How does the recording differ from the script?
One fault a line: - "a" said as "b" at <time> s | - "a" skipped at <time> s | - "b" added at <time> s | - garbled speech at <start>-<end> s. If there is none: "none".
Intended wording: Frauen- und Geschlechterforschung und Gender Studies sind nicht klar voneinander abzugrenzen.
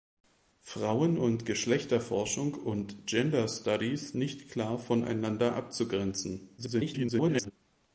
- "sind" skipped at 4.1 s
- garbled speech at 6.6-7.5 s